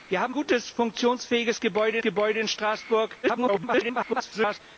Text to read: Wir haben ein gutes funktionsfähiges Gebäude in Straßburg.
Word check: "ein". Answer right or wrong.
wrong